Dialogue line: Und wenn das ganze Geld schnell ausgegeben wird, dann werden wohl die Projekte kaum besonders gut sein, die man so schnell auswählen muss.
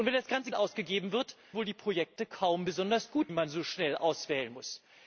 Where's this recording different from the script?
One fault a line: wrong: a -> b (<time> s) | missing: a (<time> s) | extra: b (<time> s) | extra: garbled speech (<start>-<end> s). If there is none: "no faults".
missing: Geld schnell (0.5 s)
missing: dann werden (1.4 s)
missing: sein die (3.3 s)